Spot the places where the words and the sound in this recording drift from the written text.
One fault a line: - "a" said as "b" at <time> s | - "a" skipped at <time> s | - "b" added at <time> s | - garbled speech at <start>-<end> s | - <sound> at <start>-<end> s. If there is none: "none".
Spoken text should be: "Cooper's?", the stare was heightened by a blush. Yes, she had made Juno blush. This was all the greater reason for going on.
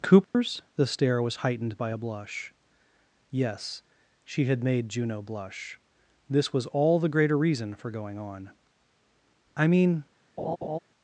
- dropout at 0.2-0.3 s
- "I mean" added at 9.6 s
- laugh at 10.4-10.8 s